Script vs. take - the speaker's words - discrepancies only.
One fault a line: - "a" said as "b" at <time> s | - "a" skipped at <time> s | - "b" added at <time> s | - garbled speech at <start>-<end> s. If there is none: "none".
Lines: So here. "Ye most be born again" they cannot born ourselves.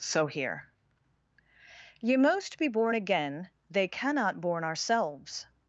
none